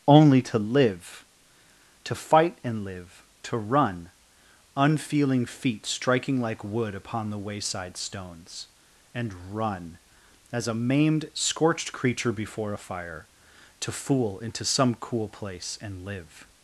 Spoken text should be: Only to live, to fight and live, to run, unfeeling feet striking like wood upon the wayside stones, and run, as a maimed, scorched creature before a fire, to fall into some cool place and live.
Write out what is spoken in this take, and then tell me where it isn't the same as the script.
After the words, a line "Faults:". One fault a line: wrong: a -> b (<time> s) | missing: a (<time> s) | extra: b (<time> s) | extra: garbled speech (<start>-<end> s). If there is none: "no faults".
Only to live, to fight and live, to run, unfeeling feet striking like wood upon the wayside stones, and run, as a maimed, scorched creature before a fire, to fool into some cool place and live.
Faults:
wrong: fall -> fool (13.9 s)